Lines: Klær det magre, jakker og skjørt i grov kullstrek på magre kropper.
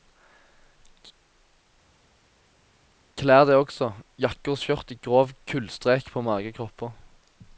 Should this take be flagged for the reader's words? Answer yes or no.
yes